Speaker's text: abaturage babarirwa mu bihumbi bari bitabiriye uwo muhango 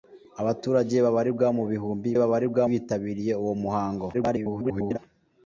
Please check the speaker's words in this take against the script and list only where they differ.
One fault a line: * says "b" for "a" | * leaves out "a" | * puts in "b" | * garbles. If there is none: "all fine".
* says "babarirwa" for "bari"
* garbles